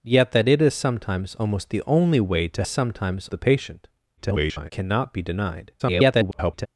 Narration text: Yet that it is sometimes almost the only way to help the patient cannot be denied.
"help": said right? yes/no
no